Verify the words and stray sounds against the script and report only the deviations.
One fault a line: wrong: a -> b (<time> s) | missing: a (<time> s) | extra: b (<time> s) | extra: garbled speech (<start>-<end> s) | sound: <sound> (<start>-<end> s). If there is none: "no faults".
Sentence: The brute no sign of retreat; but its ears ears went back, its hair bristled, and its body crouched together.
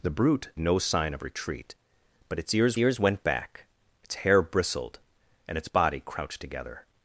no faults